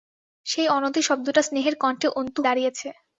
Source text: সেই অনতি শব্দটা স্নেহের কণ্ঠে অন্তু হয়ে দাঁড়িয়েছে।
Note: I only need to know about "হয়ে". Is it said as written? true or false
false